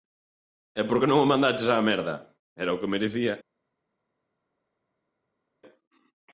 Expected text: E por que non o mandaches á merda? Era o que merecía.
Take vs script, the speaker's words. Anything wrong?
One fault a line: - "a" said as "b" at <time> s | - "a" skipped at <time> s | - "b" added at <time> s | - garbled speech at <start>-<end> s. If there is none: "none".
none